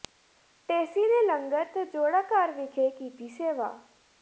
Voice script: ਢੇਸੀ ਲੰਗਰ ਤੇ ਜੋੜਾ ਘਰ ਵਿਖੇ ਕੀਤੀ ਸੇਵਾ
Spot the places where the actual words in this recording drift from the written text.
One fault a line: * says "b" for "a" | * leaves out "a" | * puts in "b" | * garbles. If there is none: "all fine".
* puts in "ਨੇ"